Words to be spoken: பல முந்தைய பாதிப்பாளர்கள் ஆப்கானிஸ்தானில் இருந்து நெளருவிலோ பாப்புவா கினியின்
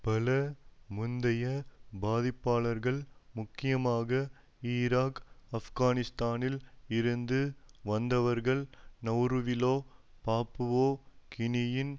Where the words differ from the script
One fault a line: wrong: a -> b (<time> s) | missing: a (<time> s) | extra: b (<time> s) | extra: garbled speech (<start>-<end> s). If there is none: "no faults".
extra: முக்கியமாக ஈராக் (3.3 s)
extra: வந்தவர்கள் (7.8 s)